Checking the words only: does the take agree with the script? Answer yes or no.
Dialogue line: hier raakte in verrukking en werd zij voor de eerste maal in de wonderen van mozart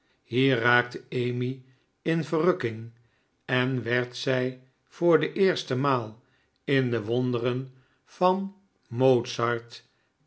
no